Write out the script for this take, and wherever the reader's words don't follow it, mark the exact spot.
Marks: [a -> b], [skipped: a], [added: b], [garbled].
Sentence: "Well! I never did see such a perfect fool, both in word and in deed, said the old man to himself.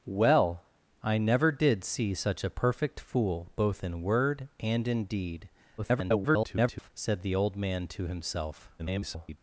"Well! I never did see such a perfect fool, both in word and in deed, [garbled] said the old man to himself. [garbled]